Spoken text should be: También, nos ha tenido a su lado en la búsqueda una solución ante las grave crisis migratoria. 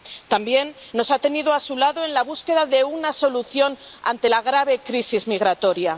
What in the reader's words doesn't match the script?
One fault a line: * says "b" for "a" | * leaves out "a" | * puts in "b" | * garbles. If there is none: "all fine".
* puts in "de"
* says "la" for "las"